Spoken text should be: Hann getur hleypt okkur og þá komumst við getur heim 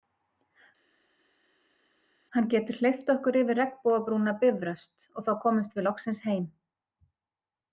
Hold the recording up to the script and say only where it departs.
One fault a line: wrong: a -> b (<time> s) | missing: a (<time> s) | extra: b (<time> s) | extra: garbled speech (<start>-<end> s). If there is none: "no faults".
extra: yfir regnbogabrúna Bifröst (3.4 s)
wrong: getur -> loksins (5.9 s)